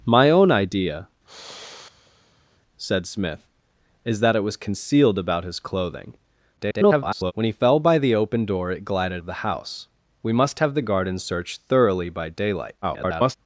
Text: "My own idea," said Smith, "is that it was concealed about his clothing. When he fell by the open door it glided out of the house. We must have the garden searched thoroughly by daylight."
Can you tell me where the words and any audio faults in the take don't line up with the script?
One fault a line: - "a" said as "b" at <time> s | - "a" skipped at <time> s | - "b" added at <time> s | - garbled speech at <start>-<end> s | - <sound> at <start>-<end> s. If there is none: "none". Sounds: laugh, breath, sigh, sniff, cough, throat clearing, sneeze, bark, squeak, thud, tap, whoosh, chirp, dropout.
- sigh at 1.2-2.6 s
- garbled speech at 6.6-7.3 s
- "out" skipped at 9.2 s
- garbled speech at 12.8-13.4 s